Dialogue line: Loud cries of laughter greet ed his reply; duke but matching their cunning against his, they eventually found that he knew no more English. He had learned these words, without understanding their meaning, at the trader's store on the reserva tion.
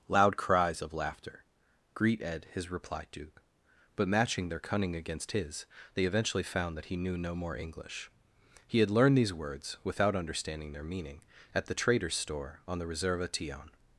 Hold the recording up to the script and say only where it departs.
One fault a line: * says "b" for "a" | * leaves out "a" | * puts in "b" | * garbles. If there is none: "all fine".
all fine